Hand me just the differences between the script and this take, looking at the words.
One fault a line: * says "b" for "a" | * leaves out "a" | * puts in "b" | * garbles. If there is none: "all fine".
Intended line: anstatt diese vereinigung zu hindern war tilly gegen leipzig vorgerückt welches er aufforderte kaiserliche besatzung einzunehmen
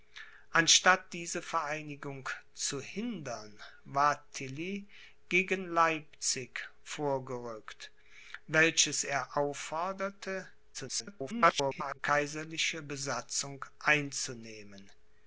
* garbles